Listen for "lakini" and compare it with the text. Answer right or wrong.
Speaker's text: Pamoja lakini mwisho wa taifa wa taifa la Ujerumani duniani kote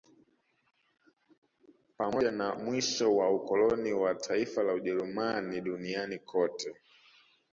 wrong